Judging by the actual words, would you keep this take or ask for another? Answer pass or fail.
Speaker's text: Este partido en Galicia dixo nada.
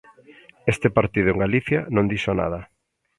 fail